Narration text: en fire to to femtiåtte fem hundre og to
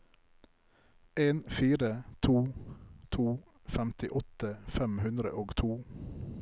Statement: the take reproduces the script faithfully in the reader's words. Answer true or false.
true